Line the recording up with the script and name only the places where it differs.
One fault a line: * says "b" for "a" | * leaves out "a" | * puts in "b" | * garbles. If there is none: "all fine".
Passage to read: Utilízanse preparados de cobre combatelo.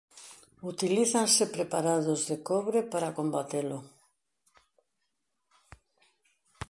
* puts in "para"